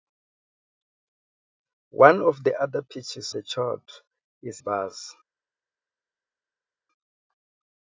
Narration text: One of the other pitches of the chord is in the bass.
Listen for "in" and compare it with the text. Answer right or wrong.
wrong